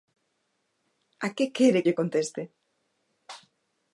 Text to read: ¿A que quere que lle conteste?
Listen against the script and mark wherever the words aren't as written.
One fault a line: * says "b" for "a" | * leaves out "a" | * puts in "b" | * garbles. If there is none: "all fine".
* leaves out "que"